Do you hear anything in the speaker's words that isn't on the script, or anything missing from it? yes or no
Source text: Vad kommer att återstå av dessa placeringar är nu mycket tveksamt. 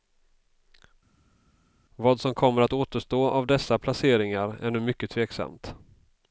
yes